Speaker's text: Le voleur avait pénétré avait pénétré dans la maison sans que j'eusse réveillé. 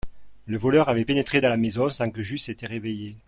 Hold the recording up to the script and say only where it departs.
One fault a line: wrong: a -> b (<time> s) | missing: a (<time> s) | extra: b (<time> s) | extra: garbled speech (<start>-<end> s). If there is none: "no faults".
missing: avait pénétré (1.4 s)
extra: été (2.5 s)